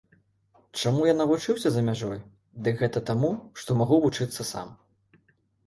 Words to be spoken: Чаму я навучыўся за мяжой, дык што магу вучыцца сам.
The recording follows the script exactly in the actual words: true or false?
false